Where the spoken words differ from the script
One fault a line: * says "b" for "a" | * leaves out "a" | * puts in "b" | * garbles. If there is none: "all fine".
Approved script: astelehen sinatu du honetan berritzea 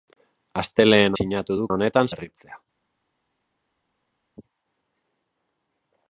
all fine